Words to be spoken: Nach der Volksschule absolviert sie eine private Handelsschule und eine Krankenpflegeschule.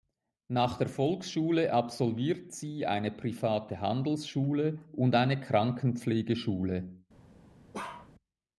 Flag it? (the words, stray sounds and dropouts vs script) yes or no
yes